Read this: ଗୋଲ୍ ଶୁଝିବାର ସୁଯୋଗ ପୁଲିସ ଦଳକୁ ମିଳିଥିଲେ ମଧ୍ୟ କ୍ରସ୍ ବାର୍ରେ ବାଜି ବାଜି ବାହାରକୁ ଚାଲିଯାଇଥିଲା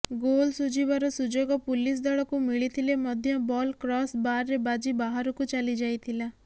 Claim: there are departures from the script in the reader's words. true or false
true